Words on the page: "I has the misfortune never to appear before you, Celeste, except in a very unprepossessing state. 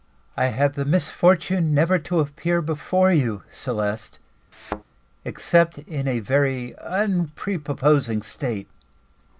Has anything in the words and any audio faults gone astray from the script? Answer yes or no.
yes